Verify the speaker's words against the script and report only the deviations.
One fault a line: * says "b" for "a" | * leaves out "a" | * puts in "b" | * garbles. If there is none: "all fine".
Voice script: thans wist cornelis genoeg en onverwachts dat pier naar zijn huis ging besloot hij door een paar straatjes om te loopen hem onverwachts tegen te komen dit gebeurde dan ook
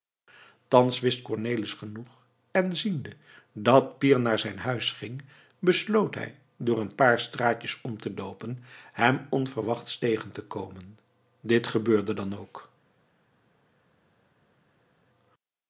* says "ziende" for "onverwachts"